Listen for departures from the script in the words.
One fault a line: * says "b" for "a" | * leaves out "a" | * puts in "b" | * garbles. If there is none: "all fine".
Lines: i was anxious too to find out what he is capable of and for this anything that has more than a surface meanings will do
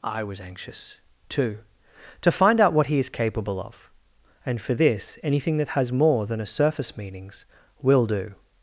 all fine